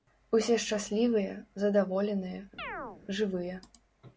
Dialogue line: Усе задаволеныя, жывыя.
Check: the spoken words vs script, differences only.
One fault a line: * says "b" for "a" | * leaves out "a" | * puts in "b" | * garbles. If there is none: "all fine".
* puts in "шчаслівыя"